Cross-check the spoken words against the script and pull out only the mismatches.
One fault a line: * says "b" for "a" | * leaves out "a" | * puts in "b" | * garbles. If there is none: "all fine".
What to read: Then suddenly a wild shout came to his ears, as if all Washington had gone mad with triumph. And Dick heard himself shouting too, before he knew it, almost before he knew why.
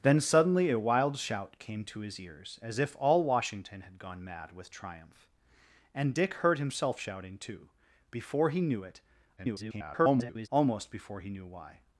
* garbles